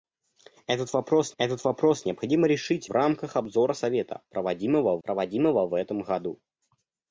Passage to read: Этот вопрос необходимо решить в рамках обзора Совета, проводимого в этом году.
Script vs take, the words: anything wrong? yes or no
yes